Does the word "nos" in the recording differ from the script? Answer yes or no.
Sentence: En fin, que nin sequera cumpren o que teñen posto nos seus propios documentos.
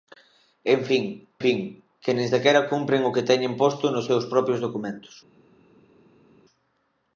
no